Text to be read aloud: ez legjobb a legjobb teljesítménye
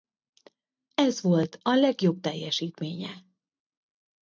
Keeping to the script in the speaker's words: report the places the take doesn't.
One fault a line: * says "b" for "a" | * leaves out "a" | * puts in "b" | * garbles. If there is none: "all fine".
* says "volt" for "legjobb"